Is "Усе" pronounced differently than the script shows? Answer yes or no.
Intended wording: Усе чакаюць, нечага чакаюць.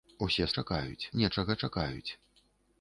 no